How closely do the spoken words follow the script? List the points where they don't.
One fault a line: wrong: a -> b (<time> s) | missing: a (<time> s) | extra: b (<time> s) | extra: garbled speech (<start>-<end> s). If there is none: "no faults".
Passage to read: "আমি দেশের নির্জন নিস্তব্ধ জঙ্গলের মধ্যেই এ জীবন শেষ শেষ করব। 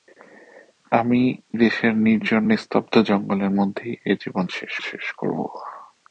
no faults